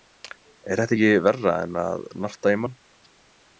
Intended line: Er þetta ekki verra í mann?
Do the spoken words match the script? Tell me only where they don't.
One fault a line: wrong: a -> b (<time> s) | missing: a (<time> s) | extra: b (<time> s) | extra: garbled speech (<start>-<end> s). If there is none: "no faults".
extra: en að narta (1.7 s)